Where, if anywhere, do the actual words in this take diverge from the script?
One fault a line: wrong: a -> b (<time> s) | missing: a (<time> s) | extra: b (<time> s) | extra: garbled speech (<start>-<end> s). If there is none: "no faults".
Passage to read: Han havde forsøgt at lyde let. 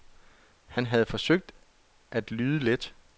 no faults